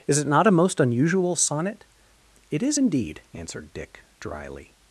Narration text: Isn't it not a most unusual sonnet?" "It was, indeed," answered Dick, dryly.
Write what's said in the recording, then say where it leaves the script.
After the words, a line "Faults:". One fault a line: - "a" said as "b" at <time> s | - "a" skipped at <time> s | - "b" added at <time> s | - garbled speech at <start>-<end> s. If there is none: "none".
Is it not a most unusual sonnet?" "It is, indeed," answered Dick, dryly.
Faults:
- "Isn't" said as "Is" at 0.1 s
- "was" said as "is" at 2.6 s